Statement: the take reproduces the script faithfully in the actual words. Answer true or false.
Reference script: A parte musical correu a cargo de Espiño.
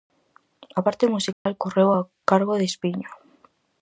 true